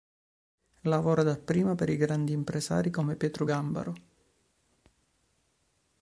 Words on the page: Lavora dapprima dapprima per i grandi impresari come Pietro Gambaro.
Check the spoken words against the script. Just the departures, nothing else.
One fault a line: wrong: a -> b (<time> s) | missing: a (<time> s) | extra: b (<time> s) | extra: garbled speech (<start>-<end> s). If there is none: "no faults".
missing: dapprima (1.8 s)